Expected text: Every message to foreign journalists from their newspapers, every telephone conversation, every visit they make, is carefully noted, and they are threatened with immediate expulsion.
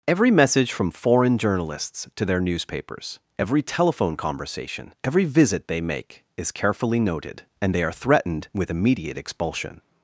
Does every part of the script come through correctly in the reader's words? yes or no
no